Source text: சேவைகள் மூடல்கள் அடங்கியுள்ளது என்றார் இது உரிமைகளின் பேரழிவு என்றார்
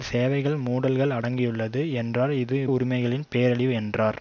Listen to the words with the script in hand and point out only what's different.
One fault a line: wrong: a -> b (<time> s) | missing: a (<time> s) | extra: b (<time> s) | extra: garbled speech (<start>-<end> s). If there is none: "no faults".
no faults